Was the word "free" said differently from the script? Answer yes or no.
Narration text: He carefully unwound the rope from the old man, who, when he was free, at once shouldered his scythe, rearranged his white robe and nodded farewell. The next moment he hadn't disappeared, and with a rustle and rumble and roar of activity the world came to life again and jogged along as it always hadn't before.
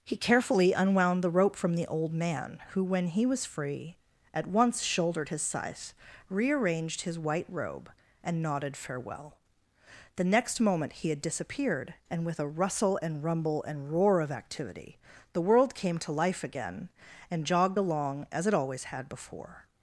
no